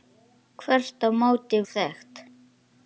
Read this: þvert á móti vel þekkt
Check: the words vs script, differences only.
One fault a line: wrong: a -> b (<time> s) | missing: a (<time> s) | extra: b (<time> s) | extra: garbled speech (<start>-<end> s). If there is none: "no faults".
missing: vel (1.6 s)